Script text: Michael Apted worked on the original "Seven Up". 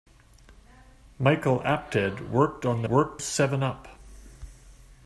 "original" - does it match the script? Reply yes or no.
no